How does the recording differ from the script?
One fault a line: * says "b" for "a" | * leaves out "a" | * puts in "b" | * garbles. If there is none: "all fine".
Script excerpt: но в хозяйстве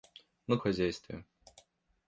all fine